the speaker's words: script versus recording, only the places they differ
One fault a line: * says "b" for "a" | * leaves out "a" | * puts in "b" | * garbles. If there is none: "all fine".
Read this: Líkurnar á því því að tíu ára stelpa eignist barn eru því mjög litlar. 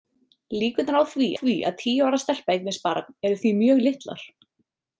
all fine